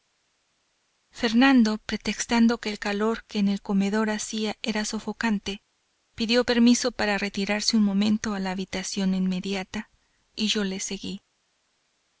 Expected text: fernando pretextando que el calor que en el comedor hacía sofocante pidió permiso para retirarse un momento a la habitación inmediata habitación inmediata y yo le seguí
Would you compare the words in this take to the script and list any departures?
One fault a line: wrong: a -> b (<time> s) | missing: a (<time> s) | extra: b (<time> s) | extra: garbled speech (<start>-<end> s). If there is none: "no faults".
extra: era (4.6 s)
missing: habitación inmediata (9.9 s)